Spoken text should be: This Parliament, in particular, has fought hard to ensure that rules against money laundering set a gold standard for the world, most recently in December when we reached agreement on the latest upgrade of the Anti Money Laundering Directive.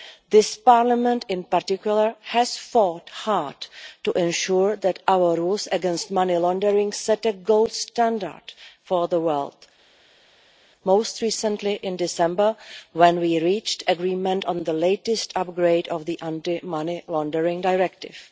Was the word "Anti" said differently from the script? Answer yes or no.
no